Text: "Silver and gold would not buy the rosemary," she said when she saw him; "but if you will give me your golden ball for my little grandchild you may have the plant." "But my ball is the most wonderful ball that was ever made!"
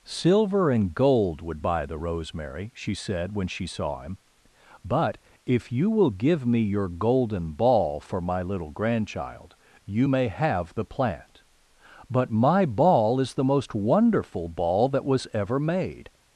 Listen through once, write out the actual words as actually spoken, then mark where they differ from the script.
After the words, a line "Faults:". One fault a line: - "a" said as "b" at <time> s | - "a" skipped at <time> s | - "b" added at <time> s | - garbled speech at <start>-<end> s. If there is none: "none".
"Silver and gold would buy the rosemary," she said when she saw him; "but if you will give me your golden ball for my little grandchild you may have the plant." "But my ball is the most wonderful ball that was ever made!"
Faults:
- "not" skipped at 1.6 s